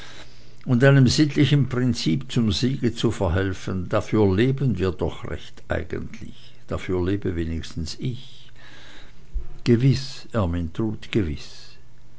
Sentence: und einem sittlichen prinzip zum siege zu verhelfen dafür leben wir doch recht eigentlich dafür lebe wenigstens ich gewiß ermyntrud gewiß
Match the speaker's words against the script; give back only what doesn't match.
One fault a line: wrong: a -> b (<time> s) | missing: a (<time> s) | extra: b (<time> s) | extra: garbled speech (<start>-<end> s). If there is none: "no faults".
no faults